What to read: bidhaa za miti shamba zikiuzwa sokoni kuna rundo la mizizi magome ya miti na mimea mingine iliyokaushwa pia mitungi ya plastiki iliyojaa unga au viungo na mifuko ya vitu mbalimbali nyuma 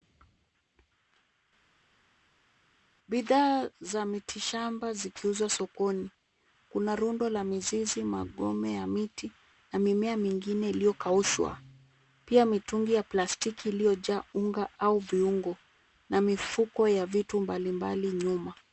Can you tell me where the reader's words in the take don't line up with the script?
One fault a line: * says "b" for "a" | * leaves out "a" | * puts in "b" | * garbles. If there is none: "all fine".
all fine